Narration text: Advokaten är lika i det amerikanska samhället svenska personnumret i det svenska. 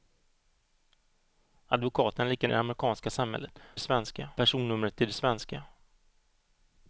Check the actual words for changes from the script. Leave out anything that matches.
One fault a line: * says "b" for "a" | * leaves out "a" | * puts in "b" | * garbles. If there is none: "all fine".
all fine